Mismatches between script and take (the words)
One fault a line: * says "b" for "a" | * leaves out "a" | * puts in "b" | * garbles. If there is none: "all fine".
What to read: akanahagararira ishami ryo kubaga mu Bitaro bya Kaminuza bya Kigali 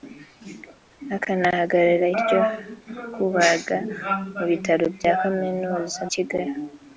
* leaves out "ishami"
* leaves out "bya"